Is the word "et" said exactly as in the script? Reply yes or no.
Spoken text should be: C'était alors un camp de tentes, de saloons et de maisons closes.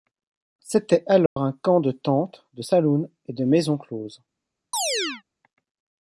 yes